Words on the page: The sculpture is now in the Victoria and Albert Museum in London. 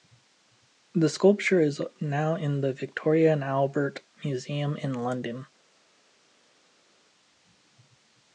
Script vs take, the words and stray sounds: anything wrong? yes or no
no